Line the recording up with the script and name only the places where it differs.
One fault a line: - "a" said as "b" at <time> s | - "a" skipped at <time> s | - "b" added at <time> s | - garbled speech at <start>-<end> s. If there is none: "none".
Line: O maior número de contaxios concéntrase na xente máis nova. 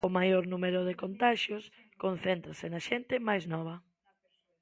none